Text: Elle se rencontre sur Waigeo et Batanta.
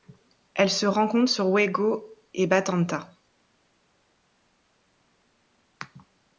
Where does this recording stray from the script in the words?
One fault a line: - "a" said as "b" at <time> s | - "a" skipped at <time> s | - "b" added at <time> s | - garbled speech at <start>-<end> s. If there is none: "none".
none